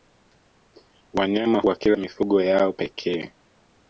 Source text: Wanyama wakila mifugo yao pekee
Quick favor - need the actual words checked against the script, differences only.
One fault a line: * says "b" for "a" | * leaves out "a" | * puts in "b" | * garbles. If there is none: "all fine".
all fine